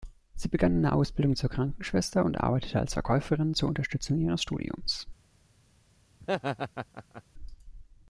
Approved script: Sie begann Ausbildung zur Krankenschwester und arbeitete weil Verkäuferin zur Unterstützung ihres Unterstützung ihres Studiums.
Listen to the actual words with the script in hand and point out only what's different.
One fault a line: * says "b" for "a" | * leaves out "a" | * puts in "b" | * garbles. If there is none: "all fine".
* puts in "eine"
* says "als" for "weil"
* leaves out "Unterstützung ihres"